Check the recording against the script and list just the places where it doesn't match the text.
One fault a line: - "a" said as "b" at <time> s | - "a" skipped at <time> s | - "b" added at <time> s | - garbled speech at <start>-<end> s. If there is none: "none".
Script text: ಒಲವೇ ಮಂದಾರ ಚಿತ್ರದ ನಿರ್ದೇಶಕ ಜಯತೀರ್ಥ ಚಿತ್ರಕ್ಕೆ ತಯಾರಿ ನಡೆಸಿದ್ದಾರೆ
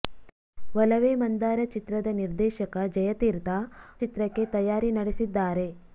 none